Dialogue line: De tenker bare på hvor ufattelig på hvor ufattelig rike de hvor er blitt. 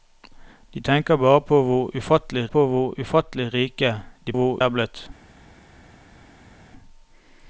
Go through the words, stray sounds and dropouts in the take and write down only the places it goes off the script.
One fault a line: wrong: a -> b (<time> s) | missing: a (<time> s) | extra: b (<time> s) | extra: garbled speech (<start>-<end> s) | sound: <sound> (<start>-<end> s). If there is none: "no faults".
no faults